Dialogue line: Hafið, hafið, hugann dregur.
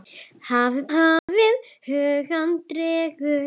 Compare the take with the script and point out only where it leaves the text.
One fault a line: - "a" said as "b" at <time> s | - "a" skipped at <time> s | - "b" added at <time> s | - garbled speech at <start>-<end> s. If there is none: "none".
none